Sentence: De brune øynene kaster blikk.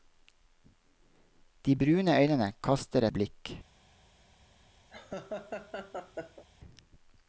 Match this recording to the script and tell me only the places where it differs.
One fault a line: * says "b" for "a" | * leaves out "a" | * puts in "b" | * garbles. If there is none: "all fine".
all fine